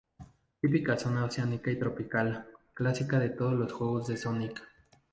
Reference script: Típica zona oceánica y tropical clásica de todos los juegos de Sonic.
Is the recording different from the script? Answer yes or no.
no